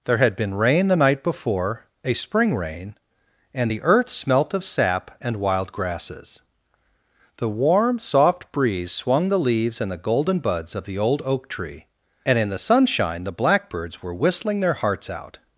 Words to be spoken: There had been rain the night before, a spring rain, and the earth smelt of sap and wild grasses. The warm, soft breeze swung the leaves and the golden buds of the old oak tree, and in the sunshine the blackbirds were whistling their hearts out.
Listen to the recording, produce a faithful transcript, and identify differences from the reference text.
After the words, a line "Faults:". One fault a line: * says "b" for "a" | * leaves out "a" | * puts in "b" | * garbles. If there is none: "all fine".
There had been rain the night before, a spring rain, and the earth smelt of sap and wild grasses. The warm, soft breeze swung the leaves and the golden buds of the old oak tree, and in the sunshine the blackbirds were whistling their hearts out.
Faults:
all fine